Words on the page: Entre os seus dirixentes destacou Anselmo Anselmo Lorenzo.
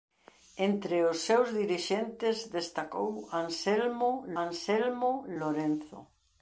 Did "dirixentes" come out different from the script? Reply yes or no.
no